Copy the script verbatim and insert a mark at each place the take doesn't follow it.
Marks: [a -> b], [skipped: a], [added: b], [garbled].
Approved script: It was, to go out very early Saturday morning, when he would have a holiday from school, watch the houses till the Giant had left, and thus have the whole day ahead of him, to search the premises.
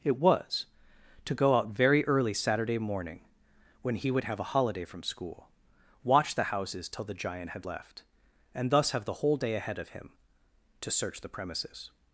It was, to go out very early Saturday morning, when he would have a holiday from school, watch the houses till the Giant had left, and thus have the whole day ahead of him, to search the premises.